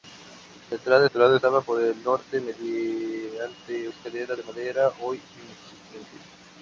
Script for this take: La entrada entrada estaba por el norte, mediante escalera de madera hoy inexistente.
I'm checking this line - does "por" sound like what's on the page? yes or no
yes